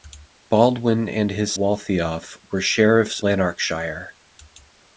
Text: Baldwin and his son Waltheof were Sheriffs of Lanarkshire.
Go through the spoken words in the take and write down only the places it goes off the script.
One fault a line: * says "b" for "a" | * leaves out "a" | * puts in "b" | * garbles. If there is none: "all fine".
* leaves out "son"
* leaves out "of"